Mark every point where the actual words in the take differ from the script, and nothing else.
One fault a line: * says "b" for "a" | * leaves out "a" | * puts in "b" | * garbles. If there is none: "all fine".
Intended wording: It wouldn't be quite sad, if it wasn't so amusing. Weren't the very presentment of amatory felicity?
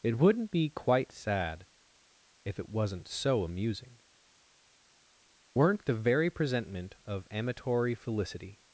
all fine